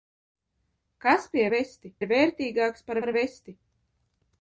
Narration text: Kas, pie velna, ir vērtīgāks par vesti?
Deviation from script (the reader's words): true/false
true